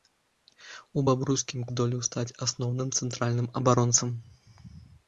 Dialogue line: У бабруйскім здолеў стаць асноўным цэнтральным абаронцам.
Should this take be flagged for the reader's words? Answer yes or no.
no